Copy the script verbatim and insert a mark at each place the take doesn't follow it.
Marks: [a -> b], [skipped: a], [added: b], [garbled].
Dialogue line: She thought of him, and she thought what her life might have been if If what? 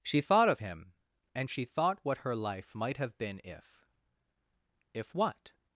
She thought of him, and she thought what her life might have been if If what?